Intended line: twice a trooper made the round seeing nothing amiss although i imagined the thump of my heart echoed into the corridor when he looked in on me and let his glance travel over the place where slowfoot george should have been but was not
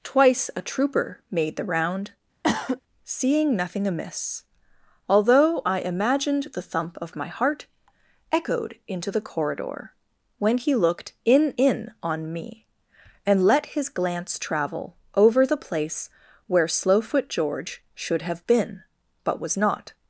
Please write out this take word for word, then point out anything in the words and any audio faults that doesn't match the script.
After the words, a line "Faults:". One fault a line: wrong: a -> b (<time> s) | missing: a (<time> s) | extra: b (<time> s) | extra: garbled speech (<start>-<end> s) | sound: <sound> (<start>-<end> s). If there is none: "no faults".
twice a trooper made the round seeing nothing amiss although i imagined the thump of my heart echoed into the corridor when he looked in in on me and let his glance travel over the place where slowfoot george should have been but was not
Faults:
sound: cough (2.4-2.8 s)
extra: in (11.6 s)